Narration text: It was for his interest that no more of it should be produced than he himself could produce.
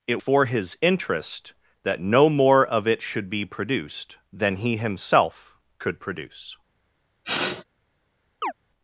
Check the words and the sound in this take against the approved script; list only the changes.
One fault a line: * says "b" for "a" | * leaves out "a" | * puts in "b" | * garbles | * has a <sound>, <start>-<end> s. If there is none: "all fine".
* leaves out "was"
* has a sniff, 7.2-7.6 s
* has a chirp, 8.4-8.5 s